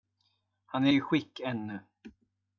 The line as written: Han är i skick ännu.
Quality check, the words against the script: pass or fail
pass